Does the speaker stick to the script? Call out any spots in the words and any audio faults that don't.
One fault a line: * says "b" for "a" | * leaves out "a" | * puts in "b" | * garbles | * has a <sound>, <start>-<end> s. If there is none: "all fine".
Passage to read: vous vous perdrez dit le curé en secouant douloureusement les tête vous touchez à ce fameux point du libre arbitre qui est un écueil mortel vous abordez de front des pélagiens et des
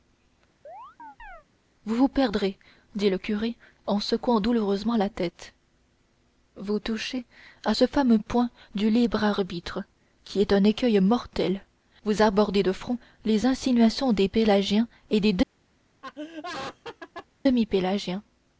* has a chirp, 0.6-1.4 s
* says "la" for "les"
* puts in "les insinuations"
* has a laugh, 16.0-17.3 s